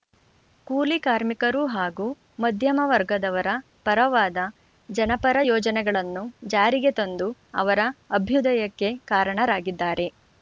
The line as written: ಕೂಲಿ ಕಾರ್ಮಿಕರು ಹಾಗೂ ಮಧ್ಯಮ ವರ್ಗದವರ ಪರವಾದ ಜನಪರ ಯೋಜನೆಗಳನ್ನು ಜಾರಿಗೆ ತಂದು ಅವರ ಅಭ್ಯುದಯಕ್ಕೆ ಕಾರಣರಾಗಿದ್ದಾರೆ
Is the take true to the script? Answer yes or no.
yes